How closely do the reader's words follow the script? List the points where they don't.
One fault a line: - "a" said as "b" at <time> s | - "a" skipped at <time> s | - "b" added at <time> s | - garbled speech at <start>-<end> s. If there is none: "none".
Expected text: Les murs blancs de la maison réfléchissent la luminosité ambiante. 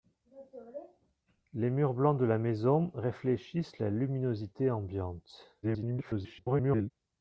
- garbled speech at 5.6-6.9 s